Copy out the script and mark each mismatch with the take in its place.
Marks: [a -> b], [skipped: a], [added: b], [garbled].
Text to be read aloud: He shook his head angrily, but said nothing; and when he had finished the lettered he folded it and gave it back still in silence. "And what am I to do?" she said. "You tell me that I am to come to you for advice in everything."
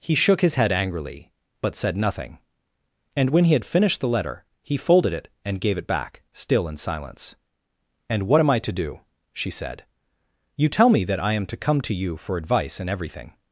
He shook his head angrily, but said nothing; and when he had finished the [lettered -> letter] he folded it and gave it back still in silence. "And what am I to do?" she said. "You tell me that I am to come to you for advice in everything."